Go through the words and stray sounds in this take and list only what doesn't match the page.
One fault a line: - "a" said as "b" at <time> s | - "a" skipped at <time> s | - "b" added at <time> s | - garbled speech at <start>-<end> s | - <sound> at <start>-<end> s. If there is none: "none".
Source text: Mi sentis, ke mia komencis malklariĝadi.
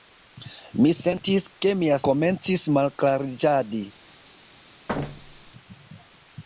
- thud at 4.9-5.5 s